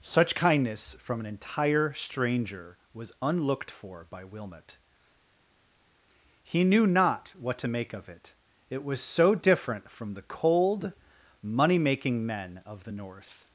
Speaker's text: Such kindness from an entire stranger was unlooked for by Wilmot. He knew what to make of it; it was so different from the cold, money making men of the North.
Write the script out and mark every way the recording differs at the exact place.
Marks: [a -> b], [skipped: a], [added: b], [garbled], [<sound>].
Such kindness from an entire stranger was unlooked for by Wilmot. He knew [added: not] what to make of it; it was so different from the cold, money making men of the North.